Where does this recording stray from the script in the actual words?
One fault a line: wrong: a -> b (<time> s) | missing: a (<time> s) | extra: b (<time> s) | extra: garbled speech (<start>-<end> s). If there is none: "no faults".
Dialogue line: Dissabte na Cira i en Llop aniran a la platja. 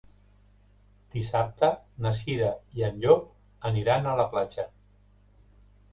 no faults